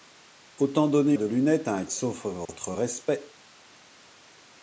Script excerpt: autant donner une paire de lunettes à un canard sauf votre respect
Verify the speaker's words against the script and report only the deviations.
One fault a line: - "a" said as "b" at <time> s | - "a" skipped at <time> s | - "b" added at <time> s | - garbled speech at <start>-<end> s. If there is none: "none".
- "une paire" skipped at 1.2 s
- "canard" skipped at 1.8 s